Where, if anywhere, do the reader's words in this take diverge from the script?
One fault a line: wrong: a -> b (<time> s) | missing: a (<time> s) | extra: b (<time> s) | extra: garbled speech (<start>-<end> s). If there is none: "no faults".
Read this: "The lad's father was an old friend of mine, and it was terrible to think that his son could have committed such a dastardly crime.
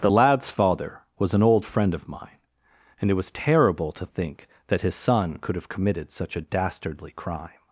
no faults